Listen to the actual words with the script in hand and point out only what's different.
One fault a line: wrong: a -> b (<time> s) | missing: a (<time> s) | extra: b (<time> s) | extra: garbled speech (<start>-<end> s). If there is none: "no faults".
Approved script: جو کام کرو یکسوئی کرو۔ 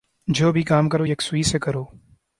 extra: بھی (0.5 s)
extra: سے (1.4 s)